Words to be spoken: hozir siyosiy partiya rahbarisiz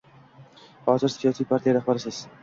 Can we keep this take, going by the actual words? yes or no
yes